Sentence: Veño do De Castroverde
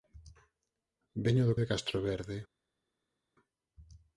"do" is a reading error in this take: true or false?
false